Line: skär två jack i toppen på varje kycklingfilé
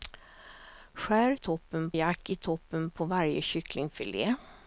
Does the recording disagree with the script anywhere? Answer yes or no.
yes